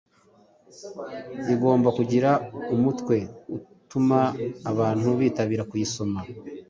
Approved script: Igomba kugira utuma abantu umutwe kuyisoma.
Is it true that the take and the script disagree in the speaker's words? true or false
true